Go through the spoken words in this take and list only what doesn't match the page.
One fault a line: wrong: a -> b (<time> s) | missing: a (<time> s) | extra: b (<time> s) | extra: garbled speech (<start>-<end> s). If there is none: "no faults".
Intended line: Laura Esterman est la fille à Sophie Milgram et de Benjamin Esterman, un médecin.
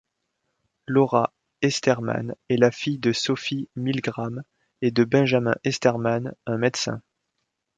wrong: à -> de (3.0 s)